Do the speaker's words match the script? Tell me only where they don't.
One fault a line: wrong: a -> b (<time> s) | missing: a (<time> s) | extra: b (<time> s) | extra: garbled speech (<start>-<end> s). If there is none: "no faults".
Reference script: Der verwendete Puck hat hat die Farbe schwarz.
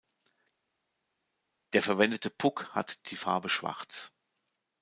missing: hat (3.1 s)